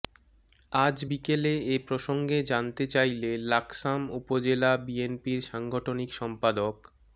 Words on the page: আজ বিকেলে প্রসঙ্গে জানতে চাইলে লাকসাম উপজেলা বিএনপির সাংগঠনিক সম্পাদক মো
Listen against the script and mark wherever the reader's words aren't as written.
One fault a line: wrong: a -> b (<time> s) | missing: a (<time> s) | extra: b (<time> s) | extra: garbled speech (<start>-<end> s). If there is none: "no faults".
extra: এ (1.7 s)